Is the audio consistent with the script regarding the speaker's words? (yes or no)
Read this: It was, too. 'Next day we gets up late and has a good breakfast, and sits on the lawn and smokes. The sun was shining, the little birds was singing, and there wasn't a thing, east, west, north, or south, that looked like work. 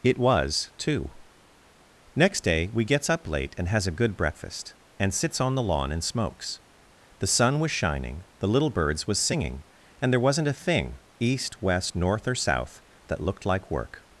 yes